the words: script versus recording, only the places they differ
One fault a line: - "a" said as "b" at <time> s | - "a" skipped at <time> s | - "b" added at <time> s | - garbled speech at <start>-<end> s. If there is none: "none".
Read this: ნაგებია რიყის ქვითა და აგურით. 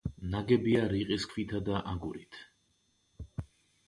none